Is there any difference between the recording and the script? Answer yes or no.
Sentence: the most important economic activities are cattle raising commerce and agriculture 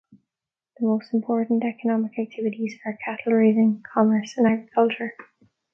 no